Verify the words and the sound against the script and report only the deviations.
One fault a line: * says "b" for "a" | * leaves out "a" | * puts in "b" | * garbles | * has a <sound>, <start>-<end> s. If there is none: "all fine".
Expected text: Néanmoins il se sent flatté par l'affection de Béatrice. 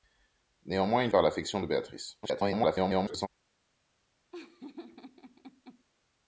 * leaves out "se sent flatté"
* garbles
* has a laugh, 4.3-5.8 s